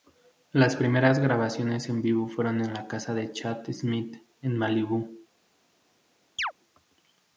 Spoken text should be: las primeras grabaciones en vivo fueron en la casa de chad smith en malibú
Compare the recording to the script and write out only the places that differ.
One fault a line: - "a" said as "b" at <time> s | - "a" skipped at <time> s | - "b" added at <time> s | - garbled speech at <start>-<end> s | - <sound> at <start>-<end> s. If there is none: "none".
- chirp at 6.4-6.5 s